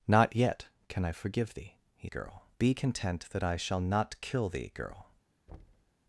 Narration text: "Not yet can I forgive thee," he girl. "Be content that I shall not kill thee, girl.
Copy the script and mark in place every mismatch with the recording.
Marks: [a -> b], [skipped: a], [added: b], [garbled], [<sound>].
"Not yet can I forgive thee," he girl. "Be content that I shall not kill thee, girl. [thud]